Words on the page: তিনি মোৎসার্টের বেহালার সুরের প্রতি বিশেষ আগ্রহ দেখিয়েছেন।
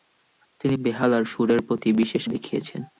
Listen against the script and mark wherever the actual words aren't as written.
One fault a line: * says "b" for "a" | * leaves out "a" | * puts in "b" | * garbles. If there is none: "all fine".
* leaves out "মোৎসার্টের"
* leaves out "আগ্রহ"